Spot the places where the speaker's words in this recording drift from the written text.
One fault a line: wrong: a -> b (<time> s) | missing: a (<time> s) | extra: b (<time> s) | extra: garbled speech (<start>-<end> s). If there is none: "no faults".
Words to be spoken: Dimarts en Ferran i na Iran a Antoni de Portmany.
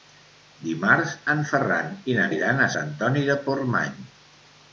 no faults